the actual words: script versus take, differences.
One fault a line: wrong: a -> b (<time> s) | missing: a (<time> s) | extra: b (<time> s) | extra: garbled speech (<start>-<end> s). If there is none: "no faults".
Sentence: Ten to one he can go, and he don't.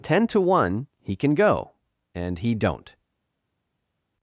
no faults